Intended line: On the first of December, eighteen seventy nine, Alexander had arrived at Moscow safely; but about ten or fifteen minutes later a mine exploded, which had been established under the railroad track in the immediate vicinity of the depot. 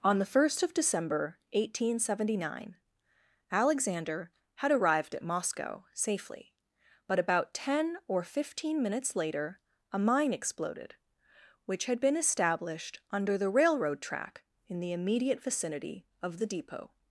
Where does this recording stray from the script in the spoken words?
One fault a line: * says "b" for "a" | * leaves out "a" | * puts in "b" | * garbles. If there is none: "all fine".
all fine